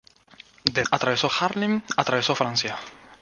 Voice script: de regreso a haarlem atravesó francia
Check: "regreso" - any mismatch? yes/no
yes